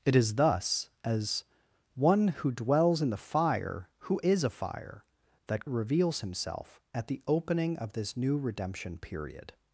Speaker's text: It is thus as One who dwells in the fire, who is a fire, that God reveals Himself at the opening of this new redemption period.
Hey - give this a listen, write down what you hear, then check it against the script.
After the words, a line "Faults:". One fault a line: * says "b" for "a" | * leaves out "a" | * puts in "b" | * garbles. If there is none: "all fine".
It is thus as One who dwells in the fire, who is a fire, that Reveals Himself at the opening of this new redemption period.
Faults:
* leaves out "God"